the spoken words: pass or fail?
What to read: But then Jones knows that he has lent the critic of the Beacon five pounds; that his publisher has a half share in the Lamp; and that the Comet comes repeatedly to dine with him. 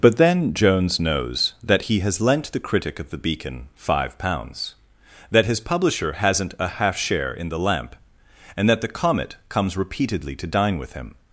fail